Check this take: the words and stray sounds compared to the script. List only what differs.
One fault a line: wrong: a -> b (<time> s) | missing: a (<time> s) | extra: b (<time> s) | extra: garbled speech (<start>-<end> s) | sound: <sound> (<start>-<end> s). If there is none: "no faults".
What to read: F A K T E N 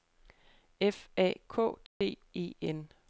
sound: dropout (1.9-2.0 s)